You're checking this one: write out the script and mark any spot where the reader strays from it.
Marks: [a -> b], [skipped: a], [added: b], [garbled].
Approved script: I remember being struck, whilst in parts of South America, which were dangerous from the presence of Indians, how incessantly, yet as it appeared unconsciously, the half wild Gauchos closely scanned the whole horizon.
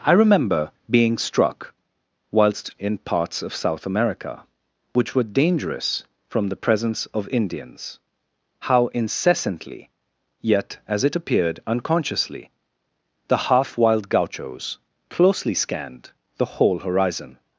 I remember being struck, whilst in parts of South America, which were dangerous from the presence of Indians, how incessantly, yet as it appeared unconsciously, the half wild Gauchos closely scanned the whole horizon.